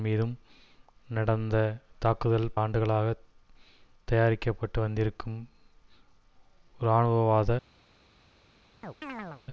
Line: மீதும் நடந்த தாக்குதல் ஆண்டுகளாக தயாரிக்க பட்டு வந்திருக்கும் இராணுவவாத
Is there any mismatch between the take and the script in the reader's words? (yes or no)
no